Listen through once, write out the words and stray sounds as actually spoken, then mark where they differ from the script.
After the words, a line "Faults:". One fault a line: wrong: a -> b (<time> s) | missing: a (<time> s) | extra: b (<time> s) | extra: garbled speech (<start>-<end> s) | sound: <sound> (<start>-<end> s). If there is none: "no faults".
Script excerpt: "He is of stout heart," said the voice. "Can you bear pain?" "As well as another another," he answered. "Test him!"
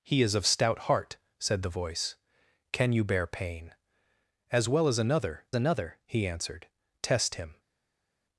"He is of stout heart," said the voice. "Can you bear pain?" "As well as another another," he answered. "Test him!"
Faults:
no faults